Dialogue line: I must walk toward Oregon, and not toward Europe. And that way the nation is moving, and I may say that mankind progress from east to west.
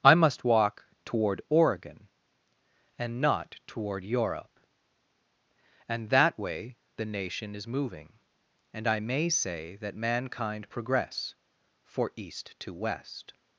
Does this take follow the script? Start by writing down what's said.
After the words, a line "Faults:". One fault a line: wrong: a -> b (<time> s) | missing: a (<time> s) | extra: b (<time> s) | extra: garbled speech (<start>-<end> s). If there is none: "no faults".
I must walk toward Oregon, and not toward Europe. And that way the nation is moving, and I may say that mankind progress for east to west.
Faults:
wrong: from -> for (11.8 s)